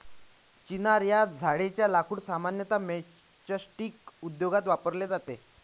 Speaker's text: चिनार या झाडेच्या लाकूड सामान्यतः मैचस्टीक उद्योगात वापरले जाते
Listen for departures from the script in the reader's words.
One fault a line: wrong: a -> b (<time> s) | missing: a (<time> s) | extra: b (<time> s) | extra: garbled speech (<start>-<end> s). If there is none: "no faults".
no faults